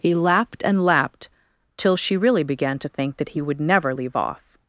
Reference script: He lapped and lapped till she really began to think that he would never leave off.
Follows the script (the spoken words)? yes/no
yes